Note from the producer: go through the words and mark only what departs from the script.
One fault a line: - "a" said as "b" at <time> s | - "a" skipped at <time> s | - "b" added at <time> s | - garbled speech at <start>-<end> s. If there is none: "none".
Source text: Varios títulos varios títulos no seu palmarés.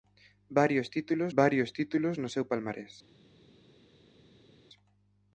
none